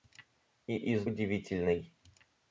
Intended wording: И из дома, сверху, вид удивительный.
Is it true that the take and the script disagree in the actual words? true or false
true